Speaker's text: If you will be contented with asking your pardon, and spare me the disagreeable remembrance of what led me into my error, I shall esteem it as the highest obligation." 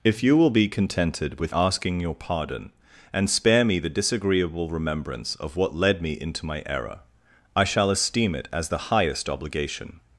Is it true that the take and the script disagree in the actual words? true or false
false